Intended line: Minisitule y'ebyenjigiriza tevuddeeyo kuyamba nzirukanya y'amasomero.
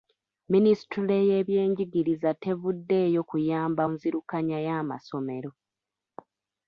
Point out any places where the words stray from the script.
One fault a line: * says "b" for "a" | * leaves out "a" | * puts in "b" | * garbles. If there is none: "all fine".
all fine